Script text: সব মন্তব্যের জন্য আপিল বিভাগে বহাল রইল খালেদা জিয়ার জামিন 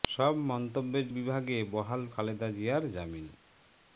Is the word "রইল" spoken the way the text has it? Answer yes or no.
no